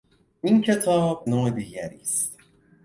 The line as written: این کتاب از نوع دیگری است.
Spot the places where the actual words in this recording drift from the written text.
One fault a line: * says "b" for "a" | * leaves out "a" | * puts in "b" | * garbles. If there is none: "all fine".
* leaves out "از"